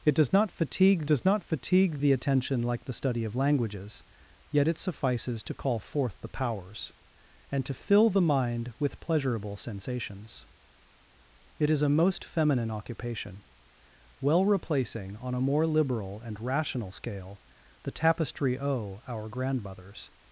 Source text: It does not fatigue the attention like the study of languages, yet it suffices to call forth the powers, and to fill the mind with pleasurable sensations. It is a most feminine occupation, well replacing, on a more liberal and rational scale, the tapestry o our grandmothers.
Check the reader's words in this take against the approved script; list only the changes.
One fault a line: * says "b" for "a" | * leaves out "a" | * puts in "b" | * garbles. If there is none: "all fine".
* puts in "does not fatigue"